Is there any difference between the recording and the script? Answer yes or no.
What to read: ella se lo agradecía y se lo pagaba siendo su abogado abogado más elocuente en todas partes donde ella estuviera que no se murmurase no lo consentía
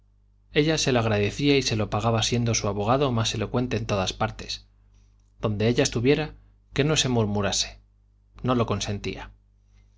yes